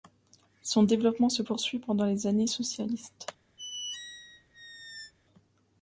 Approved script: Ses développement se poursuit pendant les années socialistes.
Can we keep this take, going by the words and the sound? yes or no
no